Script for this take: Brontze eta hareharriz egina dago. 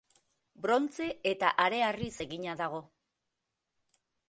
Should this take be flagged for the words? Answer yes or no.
no